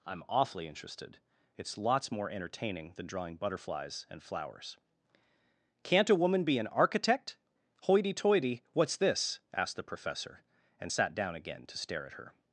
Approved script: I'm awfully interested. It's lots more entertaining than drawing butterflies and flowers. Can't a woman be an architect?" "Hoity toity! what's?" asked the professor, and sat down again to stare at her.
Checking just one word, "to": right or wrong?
right